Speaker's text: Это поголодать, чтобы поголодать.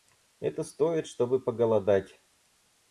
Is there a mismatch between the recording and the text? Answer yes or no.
yes